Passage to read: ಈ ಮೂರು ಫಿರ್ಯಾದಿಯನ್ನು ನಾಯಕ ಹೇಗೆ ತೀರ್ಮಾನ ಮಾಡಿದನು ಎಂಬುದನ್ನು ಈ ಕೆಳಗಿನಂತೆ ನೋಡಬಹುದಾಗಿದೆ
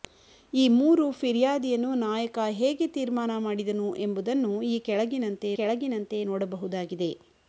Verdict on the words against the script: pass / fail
fail